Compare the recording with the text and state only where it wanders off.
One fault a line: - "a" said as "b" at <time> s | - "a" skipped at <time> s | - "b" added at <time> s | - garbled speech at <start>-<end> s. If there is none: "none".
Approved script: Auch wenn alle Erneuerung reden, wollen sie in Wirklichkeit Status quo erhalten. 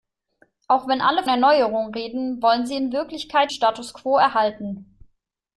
none